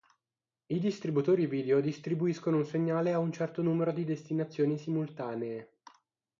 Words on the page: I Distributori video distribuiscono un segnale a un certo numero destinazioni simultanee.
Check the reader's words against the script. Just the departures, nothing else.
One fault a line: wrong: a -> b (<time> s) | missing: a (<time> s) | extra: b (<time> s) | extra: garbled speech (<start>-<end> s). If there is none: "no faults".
extra: di (3.9 s)